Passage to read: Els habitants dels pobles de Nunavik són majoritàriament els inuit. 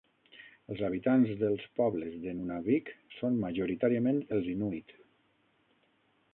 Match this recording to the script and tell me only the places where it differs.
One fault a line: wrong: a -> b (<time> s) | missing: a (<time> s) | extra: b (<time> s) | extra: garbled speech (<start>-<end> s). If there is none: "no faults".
no faults